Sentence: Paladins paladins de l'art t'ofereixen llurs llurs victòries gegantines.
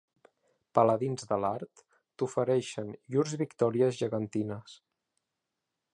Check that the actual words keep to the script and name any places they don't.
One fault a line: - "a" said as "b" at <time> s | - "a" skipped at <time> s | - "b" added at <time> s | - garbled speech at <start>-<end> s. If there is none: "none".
- "paladins" skipped at 1.3 s
- "llurs" skipped at 3.4 s